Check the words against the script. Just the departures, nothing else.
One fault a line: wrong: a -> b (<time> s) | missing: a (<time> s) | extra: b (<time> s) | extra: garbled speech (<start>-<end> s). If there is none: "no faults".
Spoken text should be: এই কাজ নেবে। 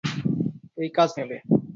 no faults